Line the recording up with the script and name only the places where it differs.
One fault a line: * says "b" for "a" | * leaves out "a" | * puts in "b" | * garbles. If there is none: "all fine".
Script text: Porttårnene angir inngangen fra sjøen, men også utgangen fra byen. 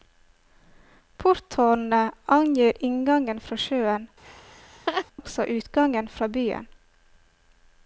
* leaves out "men"